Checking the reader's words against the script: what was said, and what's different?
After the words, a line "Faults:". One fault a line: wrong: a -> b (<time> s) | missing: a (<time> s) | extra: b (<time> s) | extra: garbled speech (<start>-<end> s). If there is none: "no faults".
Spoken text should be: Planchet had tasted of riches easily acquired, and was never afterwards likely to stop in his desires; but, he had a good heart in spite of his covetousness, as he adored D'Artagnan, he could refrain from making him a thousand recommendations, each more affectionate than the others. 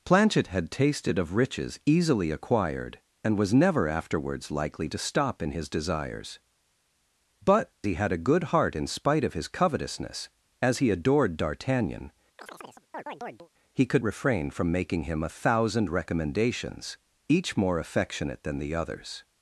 Planchet had tasted of riches easily acquired, and was never afterwards likely to stop in his desires; but, he had a good heart in spite of his covetousness, as he adored D'Artagnan, he could refrain from making him a thousand recommendations, each more affectionate than the others.
Faults:
no faults